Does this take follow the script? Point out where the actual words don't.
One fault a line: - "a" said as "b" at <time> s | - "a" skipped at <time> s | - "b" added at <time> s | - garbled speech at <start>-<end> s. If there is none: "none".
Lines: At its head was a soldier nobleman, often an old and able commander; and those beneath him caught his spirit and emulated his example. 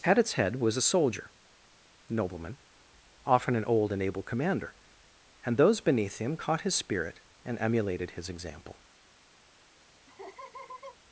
none